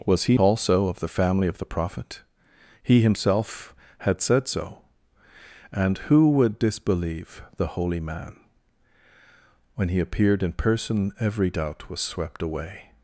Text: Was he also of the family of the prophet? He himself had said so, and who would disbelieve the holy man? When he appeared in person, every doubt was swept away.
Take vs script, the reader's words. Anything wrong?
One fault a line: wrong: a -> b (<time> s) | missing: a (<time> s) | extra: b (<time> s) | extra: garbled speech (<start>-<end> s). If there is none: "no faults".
no faults